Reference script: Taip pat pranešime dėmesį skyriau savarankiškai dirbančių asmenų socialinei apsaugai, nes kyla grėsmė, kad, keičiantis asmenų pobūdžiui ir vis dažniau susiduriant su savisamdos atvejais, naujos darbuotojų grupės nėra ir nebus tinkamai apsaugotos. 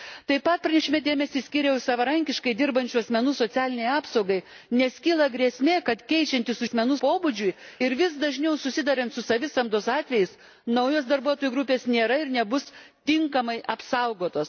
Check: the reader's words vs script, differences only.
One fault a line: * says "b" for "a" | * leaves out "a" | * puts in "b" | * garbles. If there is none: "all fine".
all fine